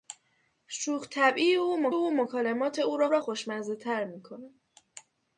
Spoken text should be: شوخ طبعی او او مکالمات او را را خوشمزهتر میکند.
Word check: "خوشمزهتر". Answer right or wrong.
right